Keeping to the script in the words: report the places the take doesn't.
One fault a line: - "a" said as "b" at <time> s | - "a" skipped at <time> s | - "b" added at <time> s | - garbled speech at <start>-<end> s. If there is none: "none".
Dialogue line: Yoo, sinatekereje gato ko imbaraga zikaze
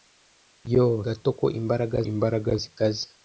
- "sinatekereje" skipped at 1.0 s
- "imbaraga" added at 2.1 s